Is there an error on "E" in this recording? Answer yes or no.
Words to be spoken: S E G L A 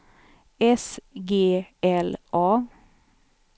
yes